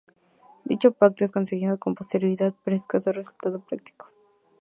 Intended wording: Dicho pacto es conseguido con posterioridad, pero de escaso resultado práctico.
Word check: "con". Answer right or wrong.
right